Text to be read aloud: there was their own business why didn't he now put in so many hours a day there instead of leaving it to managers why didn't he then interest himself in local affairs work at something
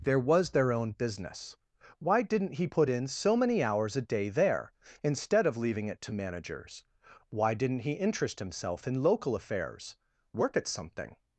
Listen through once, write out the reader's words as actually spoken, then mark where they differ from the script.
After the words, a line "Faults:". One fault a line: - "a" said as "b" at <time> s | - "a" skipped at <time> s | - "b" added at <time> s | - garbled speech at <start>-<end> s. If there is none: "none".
there was their own business why didn't he put in so many hours a day there instead of leaving it to managers why didn't he interest himself in local affairs work at something
Faults:
- "now" skipped at 2.7 s
- "then" skipped at 7.9 s